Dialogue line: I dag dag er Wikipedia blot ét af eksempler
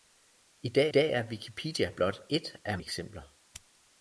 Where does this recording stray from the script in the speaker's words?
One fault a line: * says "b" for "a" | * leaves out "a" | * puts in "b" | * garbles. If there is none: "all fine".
all fine